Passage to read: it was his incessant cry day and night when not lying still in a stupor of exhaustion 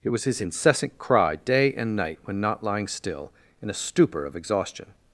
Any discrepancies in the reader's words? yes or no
no